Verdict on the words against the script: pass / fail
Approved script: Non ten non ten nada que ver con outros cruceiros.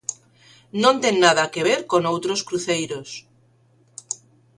fail